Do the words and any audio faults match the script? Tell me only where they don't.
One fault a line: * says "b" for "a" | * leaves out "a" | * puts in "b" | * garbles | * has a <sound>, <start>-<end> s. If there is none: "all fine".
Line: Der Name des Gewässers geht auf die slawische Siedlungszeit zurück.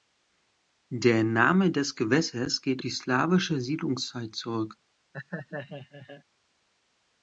* leaves out "auf"
* has a laugh, 5.1-6.2 s